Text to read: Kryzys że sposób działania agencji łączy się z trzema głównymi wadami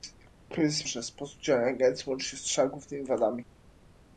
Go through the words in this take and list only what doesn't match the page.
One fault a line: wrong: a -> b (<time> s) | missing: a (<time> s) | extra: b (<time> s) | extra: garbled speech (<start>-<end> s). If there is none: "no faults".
no faults